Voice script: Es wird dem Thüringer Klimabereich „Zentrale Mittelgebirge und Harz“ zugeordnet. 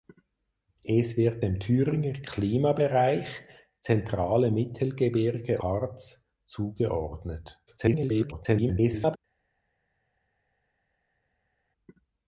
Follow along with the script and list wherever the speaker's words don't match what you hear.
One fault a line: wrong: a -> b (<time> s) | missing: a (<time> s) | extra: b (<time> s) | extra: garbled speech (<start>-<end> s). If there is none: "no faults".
missing: und (5.6 s)
extra: garbled speech (7.7-9.2 s)